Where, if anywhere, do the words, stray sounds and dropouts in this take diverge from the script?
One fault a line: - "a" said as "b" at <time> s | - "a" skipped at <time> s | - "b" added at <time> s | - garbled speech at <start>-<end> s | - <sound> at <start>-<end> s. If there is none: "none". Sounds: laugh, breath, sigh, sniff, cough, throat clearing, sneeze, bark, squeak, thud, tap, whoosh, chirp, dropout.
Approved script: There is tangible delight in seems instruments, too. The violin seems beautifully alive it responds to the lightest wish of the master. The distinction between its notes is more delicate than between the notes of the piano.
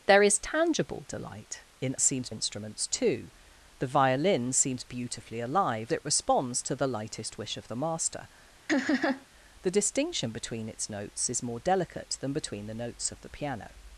- laugh at 8.7-9.3 s